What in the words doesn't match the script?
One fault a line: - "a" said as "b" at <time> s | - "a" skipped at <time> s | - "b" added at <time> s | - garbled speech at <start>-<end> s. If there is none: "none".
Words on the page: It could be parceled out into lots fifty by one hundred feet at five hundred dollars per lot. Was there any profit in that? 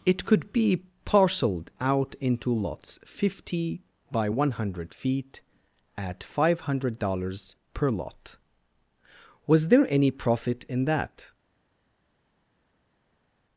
none